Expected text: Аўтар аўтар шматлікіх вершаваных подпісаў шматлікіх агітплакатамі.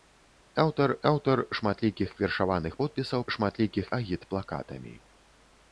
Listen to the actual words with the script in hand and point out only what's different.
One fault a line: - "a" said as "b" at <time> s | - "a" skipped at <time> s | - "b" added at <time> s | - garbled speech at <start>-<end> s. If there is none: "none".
none